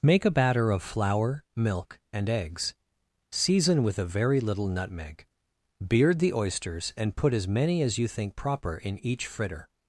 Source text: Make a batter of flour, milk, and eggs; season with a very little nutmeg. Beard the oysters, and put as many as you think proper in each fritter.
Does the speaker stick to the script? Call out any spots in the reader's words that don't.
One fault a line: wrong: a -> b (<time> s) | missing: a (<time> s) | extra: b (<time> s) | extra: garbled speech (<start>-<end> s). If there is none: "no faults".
no faults